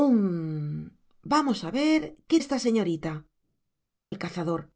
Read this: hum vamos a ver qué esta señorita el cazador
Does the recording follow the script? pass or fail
pass